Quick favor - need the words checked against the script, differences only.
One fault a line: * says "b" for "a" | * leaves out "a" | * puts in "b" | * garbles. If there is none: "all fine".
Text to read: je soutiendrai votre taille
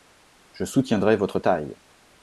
all fine